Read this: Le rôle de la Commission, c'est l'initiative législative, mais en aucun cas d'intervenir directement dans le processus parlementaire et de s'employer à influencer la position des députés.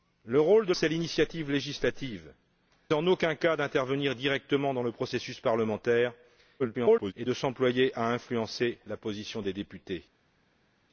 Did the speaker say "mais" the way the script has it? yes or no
no